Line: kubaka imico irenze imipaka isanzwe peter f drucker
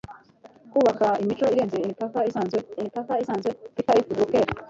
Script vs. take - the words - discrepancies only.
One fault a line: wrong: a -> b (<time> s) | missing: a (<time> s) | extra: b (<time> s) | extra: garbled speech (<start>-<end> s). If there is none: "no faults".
extra: imipaka isanzwe (2.8 s)